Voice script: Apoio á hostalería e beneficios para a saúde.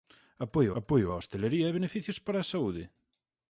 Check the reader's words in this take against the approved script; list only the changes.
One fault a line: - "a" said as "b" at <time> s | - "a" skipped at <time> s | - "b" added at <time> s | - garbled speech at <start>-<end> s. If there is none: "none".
- "apoio" added at 0.8 s